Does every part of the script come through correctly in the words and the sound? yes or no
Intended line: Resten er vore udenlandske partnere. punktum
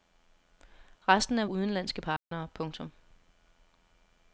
no